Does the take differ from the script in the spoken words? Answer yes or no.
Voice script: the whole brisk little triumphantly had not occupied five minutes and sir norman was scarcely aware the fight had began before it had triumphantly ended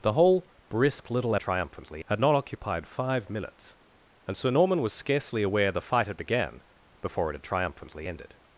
no